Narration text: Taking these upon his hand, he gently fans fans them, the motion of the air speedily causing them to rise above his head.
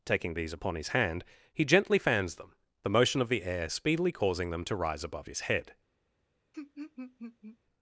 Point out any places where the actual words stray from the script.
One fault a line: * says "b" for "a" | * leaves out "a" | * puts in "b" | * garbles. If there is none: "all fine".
* leaves out "fans"